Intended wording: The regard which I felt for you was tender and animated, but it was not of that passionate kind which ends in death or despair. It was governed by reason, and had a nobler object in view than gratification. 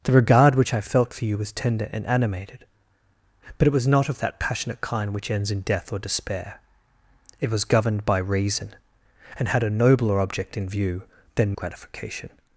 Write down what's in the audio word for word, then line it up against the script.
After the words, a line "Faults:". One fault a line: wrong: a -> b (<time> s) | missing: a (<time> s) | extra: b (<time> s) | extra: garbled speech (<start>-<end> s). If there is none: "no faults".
The regard which I felt for you was tender and animated, but it was not of that passionate kind which ends in death or despair. It was governed by reason, and had a nobler object in view than gratification.
Faults:
no faults